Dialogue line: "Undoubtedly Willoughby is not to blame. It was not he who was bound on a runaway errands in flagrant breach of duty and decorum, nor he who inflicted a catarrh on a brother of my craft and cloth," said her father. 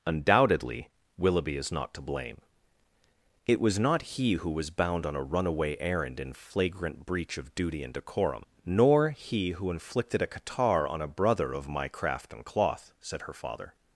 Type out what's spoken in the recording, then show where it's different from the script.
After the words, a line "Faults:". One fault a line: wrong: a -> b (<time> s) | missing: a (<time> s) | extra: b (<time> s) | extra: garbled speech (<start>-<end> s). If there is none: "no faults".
"Undoubtedly Willoughby is not to blame. It was not he who was bound on a runaway errand in flagrant breach of duty and decorum, nor he who inflicted a catarrh on a brother of my craft and cloth," said her father.
Faults:
wrong: errands -> errand (5.8 s)